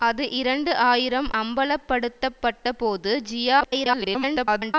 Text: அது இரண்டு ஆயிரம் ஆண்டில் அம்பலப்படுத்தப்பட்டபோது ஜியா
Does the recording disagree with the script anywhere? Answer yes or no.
yes